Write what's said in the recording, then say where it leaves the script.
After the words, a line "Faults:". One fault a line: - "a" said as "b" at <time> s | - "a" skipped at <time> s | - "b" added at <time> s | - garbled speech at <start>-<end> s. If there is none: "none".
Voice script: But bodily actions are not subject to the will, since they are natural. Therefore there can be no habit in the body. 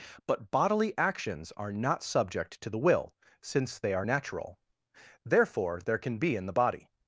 But bodily actions are not subject to the will, since they are natural. Therefore there can be in the body.
Faults:
- "no habit" skipped at 6.4 s